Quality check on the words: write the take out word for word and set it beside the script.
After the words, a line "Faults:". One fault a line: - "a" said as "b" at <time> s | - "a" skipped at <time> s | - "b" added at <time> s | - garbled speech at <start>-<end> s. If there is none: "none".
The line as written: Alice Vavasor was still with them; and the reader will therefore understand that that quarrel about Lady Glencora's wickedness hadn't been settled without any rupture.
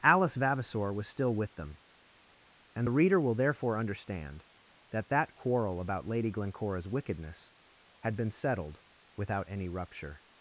Alice Vavasor was still with them; and the reader will therefore understand that that quarrel about Lady Glencora's wickedness had been settled without any rupture.
Faults:
- "hadn't" said as "had" at 8.0 s